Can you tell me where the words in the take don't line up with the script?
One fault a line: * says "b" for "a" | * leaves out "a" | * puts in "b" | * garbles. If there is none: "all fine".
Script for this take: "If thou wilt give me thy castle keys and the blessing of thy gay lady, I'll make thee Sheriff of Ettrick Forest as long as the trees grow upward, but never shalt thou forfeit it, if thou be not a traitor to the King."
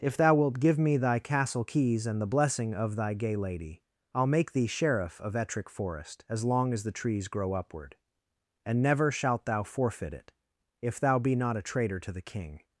* says "and" for "but"